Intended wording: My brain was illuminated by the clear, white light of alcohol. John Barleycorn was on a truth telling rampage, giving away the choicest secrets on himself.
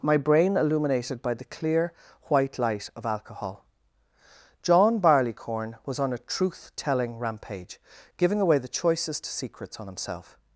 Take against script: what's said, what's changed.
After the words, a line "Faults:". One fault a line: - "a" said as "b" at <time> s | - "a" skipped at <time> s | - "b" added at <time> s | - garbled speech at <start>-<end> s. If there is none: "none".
My brain illuminated by the clear, white light of alcohol. John Barleycorn was on a truth telling rampage, giving away the choicest secrets on himself.
Faults:
- "was" skipped at 0.6 s